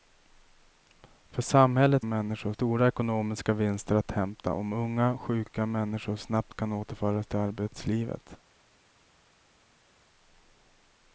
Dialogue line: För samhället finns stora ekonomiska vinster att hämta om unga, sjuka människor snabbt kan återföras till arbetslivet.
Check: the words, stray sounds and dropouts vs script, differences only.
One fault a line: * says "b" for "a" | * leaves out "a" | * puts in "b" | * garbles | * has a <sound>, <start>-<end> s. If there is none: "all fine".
* says "människor" for "finns"